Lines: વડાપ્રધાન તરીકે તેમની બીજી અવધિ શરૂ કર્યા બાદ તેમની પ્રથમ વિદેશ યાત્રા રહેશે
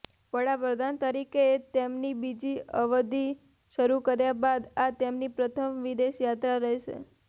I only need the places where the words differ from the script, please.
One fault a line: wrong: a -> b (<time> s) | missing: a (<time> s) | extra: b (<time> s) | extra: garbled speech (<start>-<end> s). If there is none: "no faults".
extra: આ (4.8 s)